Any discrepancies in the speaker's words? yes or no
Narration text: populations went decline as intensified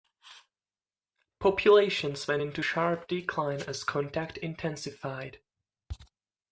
yes